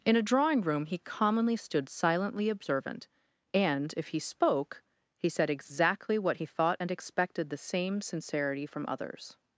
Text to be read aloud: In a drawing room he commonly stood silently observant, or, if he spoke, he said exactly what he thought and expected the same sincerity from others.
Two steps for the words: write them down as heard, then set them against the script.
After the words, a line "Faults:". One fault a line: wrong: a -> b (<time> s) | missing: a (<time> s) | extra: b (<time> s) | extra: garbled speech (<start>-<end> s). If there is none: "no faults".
In a drawing room he commonly stood silently observant, and, if he spoke, he said exactly what he thought and expected the same sincerity from others.
Faults:
wrong: or -> and (3.5 s)